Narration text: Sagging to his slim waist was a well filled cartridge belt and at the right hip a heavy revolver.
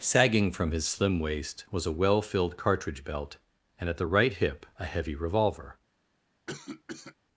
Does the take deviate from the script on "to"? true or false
true